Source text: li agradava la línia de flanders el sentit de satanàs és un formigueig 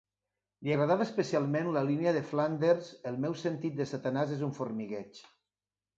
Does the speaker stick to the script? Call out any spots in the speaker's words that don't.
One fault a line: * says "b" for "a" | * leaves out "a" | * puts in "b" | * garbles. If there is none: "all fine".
* puts in "especialment"
* puts in "meu"